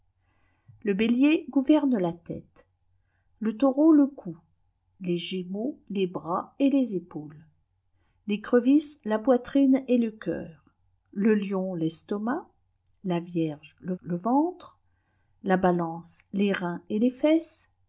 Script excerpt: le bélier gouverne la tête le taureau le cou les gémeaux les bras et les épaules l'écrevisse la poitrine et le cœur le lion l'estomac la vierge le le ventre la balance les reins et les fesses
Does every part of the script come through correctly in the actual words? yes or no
yes